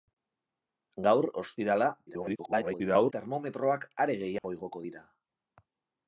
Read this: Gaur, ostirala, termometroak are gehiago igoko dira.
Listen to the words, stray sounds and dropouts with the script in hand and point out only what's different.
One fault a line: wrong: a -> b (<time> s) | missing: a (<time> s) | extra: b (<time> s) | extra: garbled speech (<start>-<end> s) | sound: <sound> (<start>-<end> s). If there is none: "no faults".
extra: garbled speech (2.1-3.1 s)
sound: dropout (4.4-4.4 s)